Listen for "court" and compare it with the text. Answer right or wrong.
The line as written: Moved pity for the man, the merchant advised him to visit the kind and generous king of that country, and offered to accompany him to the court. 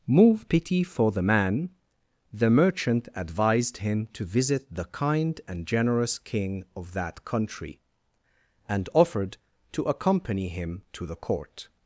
right